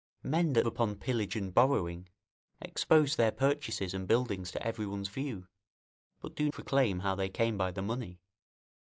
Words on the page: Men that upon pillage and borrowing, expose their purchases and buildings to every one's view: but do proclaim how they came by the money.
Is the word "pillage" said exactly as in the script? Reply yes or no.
yes